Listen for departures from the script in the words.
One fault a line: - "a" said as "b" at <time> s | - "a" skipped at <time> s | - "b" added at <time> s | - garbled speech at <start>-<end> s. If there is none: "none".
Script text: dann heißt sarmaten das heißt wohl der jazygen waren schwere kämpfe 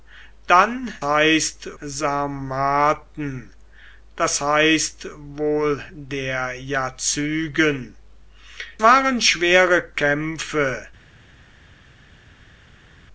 none